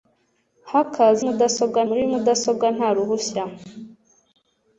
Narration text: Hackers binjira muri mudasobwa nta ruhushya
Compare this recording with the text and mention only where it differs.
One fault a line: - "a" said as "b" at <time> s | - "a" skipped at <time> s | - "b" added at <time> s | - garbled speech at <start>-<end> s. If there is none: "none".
- "binjira" said as "mudasobwa" at 1.3 s